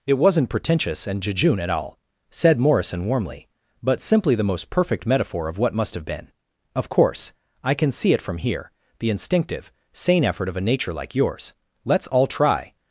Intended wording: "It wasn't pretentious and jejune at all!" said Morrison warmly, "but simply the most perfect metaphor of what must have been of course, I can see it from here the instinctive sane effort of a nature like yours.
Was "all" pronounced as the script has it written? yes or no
yes